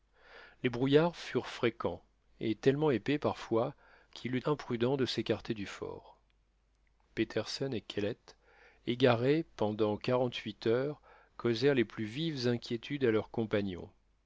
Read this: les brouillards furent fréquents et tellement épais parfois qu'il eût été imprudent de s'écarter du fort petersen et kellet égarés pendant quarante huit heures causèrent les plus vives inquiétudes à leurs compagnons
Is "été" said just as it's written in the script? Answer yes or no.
no